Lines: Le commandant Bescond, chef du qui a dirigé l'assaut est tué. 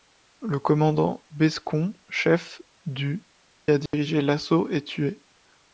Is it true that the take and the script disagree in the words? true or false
true